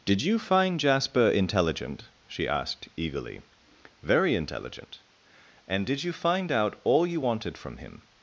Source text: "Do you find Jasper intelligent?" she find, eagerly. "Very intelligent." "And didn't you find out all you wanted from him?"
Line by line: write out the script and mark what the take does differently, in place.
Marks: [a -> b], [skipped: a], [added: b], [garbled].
["Do -> Did] you find Jasper intelligent?" she [find, -> asked] eagerly. "Very intelligent." "And [didn't -> did] you find out all you wanted from him?"